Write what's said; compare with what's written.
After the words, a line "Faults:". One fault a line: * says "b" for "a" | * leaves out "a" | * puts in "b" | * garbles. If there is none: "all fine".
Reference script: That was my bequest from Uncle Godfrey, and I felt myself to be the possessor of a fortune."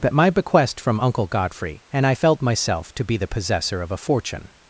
That my bequest from Uncle Godfrey, and I felt myself to be the possessor of a fortune."
Faults:
* leaves out "was"